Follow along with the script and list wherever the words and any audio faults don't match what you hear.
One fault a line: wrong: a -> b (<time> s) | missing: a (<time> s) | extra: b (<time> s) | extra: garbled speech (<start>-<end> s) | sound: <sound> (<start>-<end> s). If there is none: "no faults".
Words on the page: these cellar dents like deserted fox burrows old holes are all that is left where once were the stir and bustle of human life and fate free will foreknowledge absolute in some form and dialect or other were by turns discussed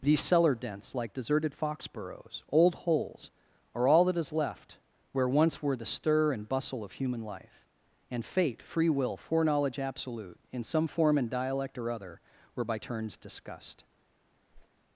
sound: whoosh (14.5-14.7 s)